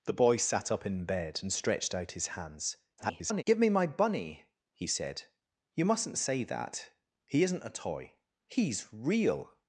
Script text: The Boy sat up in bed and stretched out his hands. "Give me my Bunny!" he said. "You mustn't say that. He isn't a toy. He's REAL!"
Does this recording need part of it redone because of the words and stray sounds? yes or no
yes